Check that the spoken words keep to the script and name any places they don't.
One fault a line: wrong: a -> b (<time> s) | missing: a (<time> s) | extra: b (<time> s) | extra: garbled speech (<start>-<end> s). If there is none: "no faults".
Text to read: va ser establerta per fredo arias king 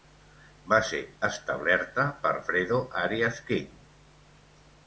no faults